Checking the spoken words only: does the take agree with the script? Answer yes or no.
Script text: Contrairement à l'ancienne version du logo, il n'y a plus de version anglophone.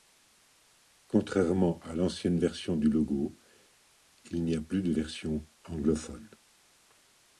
yes